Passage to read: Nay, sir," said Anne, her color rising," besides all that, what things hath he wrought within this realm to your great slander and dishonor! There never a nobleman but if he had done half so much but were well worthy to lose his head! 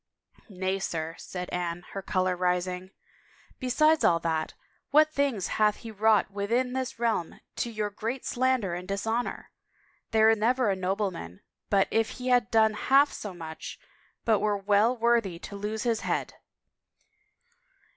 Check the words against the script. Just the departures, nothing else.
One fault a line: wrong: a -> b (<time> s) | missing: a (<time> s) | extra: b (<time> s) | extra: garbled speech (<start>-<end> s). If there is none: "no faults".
no faults